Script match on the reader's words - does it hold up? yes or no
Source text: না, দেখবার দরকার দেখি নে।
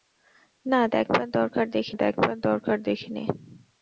no